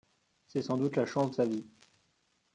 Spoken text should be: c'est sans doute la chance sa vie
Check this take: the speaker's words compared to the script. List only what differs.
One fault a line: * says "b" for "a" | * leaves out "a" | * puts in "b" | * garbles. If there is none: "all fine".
all fine